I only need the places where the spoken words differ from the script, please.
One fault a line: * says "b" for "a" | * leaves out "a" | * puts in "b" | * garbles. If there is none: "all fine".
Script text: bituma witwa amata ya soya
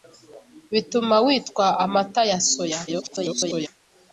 * garbles